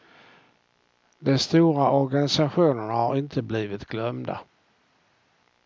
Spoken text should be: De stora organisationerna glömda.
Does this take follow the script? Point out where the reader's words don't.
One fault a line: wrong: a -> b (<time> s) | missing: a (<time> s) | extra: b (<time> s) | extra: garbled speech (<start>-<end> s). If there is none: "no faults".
extra: har inte blivit (2.9 s)